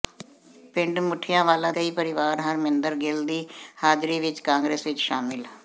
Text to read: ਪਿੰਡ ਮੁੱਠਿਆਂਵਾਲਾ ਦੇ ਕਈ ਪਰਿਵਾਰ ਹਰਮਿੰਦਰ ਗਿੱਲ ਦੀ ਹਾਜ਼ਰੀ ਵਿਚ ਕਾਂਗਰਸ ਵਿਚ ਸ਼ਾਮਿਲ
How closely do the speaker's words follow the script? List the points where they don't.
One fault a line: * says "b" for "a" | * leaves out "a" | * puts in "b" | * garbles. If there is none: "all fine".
* leaves out "ਦੇ"